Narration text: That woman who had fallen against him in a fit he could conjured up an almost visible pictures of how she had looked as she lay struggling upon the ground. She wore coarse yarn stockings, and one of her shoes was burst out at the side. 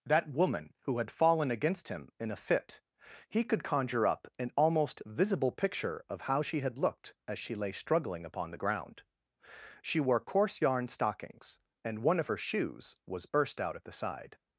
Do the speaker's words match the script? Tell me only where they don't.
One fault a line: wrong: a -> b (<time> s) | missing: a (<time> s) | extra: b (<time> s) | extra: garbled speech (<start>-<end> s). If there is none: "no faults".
wrong: conjured -> conjure (3.6 s)
wrong: pictures -> picture (5.5 s)